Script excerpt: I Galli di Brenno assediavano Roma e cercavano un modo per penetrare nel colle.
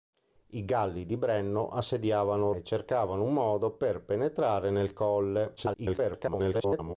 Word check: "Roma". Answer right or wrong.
wrong